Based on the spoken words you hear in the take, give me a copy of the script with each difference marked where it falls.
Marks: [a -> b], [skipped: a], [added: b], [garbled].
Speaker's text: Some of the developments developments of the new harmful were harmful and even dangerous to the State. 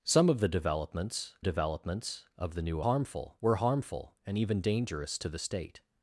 Some of the developments developments of the new harmful were harmful and even dangerous to the State.